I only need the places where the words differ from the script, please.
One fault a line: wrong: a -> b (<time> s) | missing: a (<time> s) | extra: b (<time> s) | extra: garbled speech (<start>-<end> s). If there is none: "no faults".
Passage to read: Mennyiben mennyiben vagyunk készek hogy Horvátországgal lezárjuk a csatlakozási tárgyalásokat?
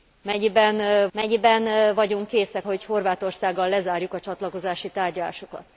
no faults